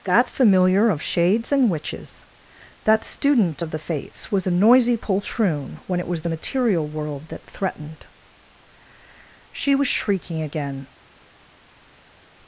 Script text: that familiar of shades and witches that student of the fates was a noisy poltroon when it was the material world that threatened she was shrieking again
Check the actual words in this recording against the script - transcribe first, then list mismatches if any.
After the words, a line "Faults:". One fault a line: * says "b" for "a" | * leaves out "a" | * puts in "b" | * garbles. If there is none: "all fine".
that familiar of shades and witches that student of the fates was a noisy poltroon when it was the material world that threatened she was shrieking again
Faults:
all fine